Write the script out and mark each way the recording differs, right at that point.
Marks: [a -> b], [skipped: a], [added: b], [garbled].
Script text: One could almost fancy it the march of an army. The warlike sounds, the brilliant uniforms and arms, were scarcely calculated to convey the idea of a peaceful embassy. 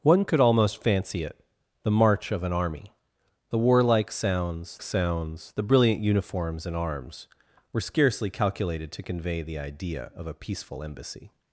One could almost fancy it the march of an army. The warlike sounds, [added: sounds] the brilliant uniforms and arms, were scarcely calculated to convey the idea of a peaceful embassy.